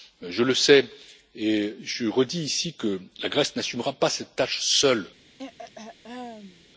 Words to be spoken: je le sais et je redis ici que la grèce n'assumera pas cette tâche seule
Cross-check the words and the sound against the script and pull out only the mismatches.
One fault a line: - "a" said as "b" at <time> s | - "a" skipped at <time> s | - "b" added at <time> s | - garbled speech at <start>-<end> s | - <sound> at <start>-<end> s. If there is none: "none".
- throat clearing at 5.4-6.6 s